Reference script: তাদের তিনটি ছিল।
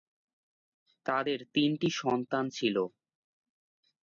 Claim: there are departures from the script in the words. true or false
true